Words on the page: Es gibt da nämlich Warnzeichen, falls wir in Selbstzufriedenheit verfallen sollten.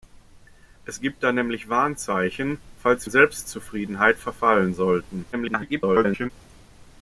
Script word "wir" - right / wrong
wrong